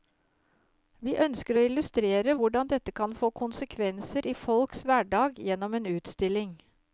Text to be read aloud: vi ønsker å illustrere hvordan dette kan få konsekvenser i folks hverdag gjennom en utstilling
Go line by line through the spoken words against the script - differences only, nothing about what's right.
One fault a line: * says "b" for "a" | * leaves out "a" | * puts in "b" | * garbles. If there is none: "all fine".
all fine